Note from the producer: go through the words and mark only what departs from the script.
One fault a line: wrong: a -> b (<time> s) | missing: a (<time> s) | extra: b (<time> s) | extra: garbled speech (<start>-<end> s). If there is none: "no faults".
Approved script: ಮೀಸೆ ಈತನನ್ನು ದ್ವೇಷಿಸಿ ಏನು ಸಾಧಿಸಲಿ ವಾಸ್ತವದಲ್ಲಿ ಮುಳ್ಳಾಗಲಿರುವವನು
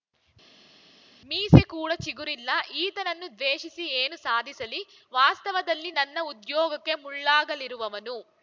extra: ಕೂಡ ಚಿಗುರಿಲ್ಲ (1.7 s)
extra: ನನ್ನ ಉದ್ಯೋಗಕ್ಕೆ (5.9 s)